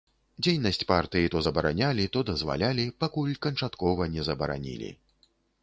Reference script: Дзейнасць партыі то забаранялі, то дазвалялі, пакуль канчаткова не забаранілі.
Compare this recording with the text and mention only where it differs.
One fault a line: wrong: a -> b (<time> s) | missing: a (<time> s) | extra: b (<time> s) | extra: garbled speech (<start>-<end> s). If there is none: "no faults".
no faults